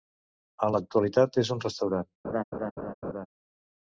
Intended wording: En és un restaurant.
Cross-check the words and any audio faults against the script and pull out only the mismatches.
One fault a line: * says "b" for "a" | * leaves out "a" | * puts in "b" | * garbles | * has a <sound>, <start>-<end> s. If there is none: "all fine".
* puts in "l'actualitat"
* has a laugh, 2.2-3.3 s